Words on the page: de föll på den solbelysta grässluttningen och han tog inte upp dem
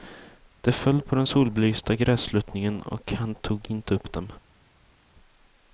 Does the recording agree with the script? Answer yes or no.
yes